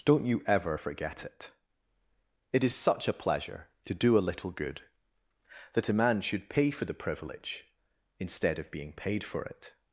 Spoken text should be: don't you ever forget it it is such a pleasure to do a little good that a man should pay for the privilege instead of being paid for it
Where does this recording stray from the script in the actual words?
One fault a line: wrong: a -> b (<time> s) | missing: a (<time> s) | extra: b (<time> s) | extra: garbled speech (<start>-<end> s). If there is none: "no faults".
no faults